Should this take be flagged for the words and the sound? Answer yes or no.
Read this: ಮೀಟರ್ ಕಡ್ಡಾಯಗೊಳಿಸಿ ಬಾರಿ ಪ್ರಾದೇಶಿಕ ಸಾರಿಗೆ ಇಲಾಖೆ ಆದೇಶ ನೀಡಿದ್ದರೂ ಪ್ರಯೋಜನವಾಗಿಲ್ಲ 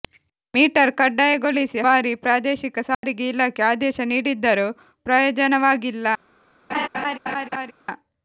yes